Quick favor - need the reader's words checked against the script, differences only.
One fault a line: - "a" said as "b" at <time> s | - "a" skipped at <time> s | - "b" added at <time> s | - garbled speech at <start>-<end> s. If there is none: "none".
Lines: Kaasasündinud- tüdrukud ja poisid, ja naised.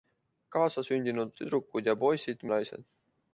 none